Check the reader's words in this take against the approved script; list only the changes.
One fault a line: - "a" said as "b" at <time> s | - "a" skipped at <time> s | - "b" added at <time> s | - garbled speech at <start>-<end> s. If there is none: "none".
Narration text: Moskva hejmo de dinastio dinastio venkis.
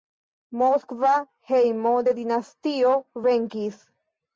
- "dinastio" skipped at 3.0 s